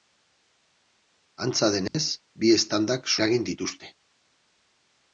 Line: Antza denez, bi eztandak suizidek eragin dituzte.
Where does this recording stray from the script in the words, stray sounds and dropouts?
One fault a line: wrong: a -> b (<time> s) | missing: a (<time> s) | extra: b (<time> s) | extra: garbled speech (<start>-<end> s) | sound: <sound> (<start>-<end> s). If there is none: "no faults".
sound: dropout (1.9-1.9 s)
missing: suizidek (3.1 s)